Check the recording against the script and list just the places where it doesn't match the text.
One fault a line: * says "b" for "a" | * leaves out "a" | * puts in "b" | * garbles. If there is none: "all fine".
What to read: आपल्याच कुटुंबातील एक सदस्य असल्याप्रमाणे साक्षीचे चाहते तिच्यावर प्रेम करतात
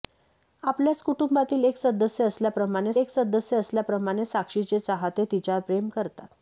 * puts in "एक सदस्य असल्याप्रमाणे"